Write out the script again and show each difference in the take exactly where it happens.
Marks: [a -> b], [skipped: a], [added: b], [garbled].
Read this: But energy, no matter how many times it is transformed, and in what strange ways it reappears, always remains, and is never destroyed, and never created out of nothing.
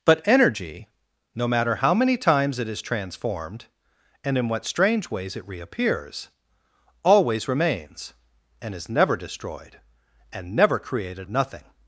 But energy, no matter how many times it is transformed, and in what strange ways it reappears, always remains, and is never destroyed, and never created [skipped: out] of nothing.